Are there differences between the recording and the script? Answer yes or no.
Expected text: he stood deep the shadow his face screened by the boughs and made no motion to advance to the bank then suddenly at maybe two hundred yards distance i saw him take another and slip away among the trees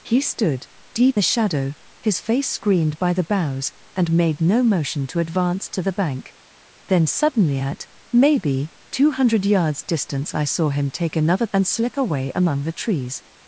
no